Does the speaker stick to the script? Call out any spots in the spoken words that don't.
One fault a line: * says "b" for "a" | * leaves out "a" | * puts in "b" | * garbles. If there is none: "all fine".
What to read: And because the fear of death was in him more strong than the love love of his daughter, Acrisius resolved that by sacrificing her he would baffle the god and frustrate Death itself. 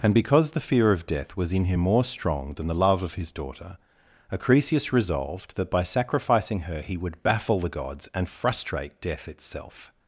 * leaves out "love"
* says "gods" for "god"